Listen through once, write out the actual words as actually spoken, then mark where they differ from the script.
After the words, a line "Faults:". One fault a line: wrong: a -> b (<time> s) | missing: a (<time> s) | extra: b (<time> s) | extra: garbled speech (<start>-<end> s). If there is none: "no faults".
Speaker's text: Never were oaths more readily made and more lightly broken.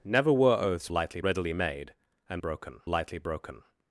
Never were oaths lightly readily made and broken lightly broken.
Faults:
wrong: more -> lightly (0.9 s)
wrong: more -> broken (2.4 s)